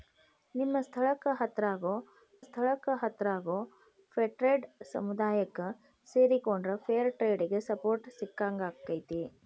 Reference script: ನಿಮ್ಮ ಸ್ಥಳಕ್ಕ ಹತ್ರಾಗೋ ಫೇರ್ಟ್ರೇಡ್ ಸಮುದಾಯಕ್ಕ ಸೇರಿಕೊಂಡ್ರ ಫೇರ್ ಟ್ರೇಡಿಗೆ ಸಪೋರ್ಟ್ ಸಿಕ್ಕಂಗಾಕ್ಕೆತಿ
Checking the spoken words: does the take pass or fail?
fail